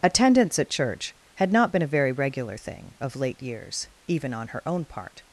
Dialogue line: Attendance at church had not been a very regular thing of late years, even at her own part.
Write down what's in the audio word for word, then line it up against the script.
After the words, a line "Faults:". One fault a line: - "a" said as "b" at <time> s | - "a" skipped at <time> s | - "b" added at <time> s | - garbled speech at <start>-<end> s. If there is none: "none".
Attendance at church had not been a very regular thing of late years, even on her own part.
Faults:
- "at" said as "on" at 4.3 s